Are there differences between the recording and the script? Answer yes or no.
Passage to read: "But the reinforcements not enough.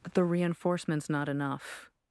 no